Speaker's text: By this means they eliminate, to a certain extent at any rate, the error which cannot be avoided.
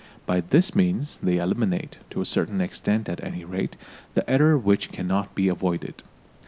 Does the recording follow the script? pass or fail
pass